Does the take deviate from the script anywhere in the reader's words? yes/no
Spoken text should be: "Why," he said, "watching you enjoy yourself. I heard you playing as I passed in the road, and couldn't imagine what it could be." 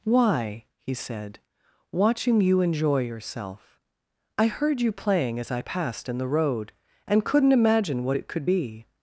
no